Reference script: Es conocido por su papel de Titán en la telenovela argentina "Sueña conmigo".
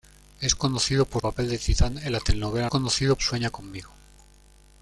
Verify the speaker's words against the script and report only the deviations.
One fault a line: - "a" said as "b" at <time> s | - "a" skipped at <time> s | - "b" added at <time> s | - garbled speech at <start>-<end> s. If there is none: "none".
- "su" skipped at 1.2 s
- "argentina" said as "conocido" at 2.7 s